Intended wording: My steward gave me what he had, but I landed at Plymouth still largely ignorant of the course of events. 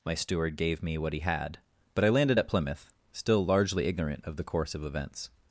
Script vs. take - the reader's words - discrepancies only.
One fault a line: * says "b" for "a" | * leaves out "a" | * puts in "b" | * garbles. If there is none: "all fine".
all fine